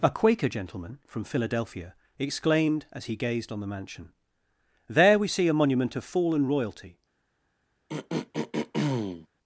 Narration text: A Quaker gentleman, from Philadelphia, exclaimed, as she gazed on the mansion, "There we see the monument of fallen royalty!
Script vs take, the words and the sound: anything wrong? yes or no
yes